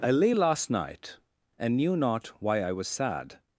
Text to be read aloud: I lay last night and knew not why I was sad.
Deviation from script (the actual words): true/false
false